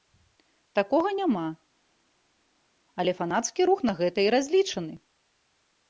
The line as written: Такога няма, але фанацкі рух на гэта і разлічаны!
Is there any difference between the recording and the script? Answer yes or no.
no